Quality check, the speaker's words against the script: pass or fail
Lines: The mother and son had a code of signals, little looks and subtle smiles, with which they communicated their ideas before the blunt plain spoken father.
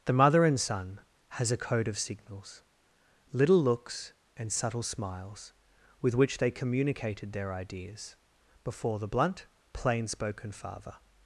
fail